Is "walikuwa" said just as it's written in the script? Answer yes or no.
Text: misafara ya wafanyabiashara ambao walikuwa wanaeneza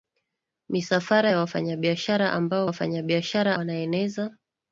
no